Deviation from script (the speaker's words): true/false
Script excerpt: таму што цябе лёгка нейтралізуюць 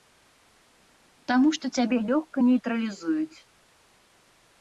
false